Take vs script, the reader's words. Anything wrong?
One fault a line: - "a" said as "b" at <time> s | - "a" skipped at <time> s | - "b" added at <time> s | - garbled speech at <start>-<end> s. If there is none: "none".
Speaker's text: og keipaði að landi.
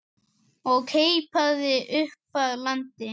- "upp" added at 2.0 s